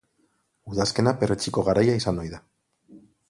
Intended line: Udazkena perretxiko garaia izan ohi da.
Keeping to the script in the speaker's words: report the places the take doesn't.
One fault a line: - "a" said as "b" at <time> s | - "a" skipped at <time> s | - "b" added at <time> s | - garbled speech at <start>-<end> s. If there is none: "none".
none